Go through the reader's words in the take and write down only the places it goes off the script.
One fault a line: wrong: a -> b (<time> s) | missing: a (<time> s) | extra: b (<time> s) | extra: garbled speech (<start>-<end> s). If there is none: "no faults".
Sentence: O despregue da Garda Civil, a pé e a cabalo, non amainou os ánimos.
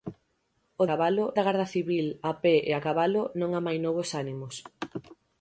wrong: despregue -> cabalo (0.9 s)